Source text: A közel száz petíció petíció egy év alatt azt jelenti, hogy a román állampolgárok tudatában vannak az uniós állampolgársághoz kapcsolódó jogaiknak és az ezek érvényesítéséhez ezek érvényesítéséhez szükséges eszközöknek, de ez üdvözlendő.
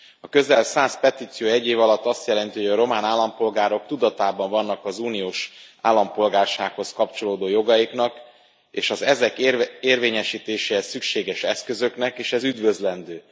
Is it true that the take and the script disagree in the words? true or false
true